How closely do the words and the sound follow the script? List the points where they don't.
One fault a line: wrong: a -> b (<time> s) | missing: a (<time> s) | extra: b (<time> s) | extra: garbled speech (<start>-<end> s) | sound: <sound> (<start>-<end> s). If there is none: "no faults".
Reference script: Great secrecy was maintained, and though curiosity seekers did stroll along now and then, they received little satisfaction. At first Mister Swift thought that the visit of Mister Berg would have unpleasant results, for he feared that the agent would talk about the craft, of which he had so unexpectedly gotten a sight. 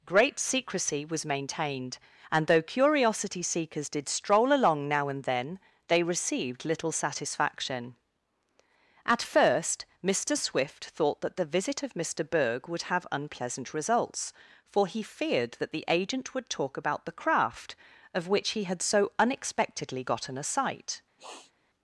sound: sniff (21.2-21.5 s)